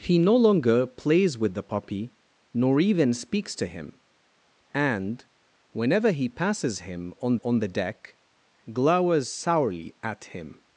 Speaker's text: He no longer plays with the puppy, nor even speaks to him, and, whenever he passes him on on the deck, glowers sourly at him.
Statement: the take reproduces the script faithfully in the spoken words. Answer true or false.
true